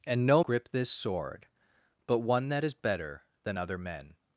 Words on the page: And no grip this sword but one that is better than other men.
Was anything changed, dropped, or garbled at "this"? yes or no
no